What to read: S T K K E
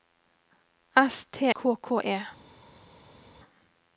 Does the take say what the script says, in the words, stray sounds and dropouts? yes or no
yes